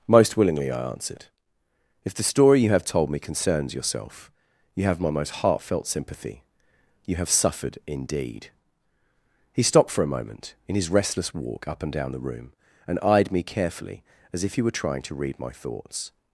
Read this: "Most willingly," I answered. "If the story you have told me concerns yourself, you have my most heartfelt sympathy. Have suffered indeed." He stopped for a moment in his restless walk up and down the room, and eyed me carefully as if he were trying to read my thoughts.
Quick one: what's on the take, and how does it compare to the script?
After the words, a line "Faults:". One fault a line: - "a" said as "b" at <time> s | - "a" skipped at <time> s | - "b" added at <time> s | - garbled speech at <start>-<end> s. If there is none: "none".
"Most willingly," I answered. "If the story you have told me concerns yourself, you have my most heartfelt sympathy. You have suffered indeed." He stopped for a moment in his restless walk up and down the room, and eyed me carefully as if he were trying to read my thoughts.
Faults:
- "You" added at 7.0 s